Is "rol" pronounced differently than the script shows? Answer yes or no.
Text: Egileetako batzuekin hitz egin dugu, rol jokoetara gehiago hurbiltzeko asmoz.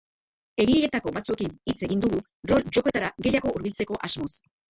no